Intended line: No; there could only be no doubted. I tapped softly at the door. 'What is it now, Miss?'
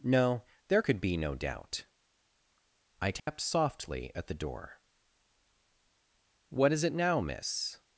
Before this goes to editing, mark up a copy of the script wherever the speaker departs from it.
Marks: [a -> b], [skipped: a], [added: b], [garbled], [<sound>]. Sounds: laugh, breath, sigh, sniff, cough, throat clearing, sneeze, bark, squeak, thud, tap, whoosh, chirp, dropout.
No; there could [skipped: only] be no [doubted. -> doubt] I tapped [dropout] softly at the door. 'What is it now, Miss?'